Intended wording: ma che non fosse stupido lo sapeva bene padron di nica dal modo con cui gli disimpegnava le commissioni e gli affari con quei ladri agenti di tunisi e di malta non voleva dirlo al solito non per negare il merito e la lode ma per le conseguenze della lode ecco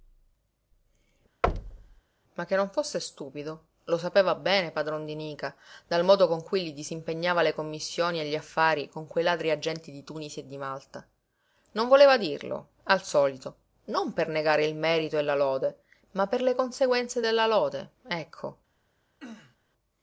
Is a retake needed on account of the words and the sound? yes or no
yes